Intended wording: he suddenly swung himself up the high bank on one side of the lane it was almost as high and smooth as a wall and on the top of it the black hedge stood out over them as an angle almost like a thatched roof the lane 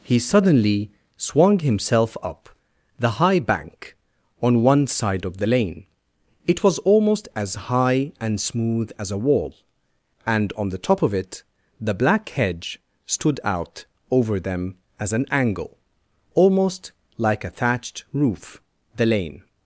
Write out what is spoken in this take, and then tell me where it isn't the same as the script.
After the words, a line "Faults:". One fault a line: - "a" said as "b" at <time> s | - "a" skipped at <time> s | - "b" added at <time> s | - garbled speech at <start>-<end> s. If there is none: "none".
he suddenly swung himself up the high bank on one side of the lane it was almost as high and smooth as a wall and on the top of it the black hedge stood out over them as an angle almost like a thatched roof the lane
Faults:
none